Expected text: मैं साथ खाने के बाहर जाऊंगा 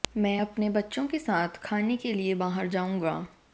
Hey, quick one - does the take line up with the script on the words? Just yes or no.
no